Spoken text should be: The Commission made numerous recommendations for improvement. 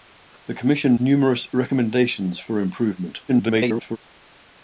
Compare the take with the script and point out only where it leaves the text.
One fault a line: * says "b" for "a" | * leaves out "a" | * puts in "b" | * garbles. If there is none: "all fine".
* leaves out "made"
* garbles